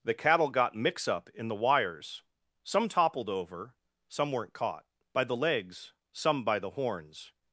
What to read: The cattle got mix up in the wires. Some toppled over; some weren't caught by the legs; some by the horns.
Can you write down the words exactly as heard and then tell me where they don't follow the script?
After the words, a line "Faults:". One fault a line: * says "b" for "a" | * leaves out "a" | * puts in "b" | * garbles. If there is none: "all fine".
The cattle got mix up in the wires. Some toppled over; some weren't caught by the legs; some by the horns.
Faults:
all fine